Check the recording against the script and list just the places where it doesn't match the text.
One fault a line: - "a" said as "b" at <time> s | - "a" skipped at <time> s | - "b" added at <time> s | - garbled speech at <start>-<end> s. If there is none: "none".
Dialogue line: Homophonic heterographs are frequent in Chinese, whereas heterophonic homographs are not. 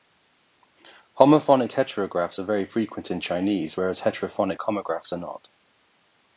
- "very" added at 2.4 s